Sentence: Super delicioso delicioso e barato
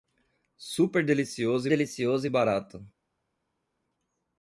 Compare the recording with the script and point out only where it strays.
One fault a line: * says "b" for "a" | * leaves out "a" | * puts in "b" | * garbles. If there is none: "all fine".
all fine